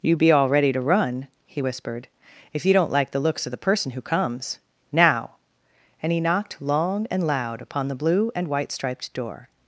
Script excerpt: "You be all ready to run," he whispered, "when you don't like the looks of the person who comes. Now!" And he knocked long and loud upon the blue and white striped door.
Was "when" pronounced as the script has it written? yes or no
no